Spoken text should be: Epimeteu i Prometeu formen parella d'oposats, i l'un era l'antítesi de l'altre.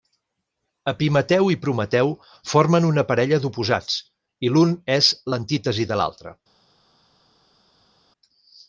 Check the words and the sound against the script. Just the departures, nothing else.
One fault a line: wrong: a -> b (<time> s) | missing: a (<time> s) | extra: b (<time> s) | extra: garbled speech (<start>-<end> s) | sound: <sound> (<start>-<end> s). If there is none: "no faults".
extra: una (2.9 s)
wrong: era -> és (5.0 s)